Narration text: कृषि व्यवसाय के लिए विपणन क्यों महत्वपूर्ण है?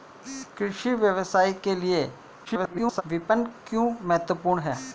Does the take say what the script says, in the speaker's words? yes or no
no